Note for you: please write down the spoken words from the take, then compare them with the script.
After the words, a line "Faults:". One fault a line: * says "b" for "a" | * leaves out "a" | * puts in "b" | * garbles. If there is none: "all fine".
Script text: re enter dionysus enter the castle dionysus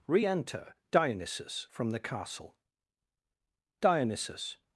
re enter dionysus from the castle dionysus
Faults:
* says "from" for "enter"